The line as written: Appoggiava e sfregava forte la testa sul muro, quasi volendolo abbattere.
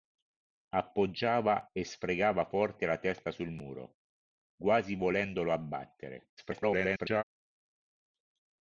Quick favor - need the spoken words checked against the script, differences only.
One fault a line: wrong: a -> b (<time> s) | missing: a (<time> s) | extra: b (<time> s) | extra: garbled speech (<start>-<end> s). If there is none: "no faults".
extra: garbled speech (6.4-7.2 s)